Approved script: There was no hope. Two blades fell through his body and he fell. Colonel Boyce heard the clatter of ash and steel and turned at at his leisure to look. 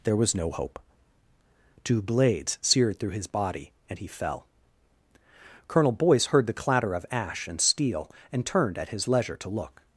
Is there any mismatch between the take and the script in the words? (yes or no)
yes